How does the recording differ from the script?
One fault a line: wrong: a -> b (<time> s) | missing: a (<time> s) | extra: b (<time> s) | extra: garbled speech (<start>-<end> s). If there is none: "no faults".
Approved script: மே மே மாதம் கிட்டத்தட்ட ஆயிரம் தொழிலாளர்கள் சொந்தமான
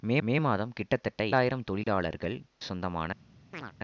no faults